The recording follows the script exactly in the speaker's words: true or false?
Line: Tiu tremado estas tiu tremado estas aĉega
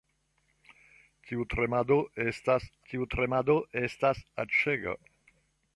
true